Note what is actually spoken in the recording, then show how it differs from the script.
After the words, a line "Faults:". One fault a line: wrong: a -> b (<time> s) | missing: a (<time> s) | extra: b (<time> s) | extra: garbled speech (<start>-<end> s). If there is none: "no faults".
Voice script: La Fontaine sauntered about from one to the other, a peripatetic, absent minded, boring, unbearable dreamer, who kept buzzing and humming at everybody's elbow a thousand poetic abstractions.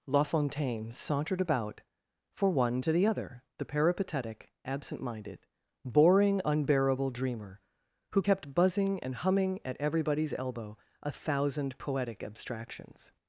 La Fontaine sauntered about for one to the other, the peripatetic, absent minded, boring, unbearable dreamer, who kept buzzing and humming at everybody's elbow a thousand poetic abstractions.
Faults:
wrong: from -> for (2.3 s)
wrong: a -> the (3.6 s)